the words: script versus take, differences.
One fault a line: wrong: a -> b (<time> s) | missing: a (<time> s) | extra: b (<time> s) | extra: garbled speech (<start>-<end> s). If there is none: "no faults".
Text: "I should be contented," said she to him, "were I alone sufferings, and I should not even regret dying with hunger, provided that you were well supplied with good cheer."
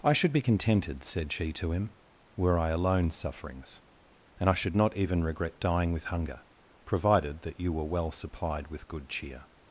no faults